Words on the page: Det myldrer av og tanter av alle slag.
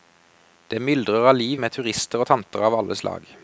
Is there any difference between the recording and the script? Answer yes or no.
yes